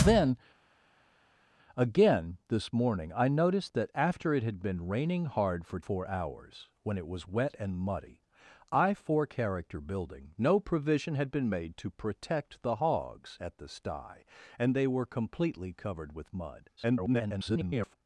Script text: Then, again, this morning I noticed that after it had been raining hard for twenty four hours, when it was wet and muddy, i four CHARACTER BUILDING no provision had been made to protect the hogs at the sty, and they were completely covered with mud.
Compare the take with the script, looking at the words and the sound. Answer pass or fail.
fail